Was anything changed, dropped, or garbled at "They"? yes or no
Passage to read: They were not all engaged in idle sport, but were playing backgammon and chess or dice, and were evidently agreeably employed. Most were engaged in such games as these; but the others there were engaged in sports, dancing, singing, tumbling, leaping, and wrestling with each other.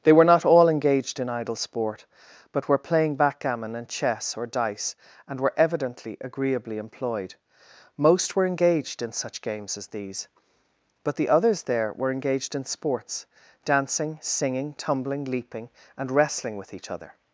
no